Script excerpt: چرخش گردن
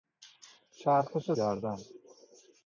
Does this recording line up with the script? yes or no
yes